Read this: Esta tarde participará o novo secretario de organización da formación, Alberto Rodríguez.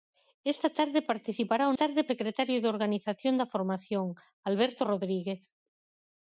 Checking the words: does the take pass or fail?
fail